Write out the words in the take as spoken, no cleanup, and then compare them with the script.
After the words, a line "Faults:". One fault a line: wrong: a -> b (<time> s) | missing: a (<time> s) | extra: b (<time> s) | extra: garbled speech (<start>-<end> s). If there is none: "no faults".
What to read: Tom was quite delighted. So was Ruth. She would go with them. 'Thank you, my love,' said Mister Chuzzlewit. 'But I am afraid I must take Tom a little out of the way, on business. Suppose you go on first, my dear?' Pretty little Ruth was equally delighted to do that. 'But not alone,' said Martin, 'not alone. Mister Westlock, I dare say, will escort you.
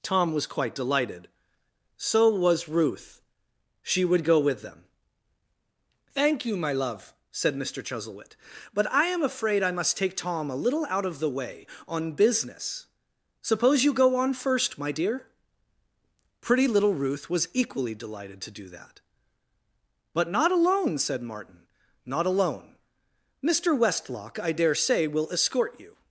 Tom was quite delighted. So was Ruth. She would go with them. 'Thank you, my love,' said Mister Chuzzlewit. 'But I am afraid I must take Tom a little out of the way, on business. Suppose you go on first, my dear?' Pretty little Ruth was equally delighted to do that. 'But not alone,' said Martin, 'not alone. Mister Westlock, I dare say, will escort you.
Faults:
no faults